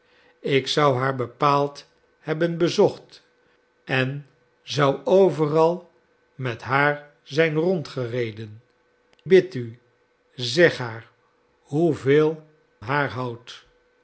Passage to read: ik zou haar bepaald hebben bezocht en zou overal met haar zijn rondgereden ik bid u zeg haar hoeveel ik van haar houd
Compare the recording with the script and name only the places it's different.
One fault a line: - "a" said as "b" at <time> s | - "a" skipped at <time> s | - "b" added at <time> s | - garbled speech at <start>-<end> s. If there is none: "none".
- "ik" skipped at 8.6 s
- "ik van" skipped at 12.5 s